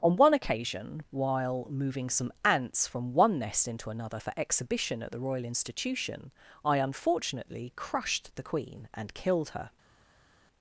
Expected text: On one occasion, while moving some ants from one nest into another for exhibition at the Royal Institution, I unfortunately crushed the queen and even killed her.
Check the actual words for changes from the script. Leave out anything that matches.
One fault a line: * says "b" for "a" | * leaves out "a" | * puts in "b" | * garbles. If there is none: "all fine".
* leaves out "even"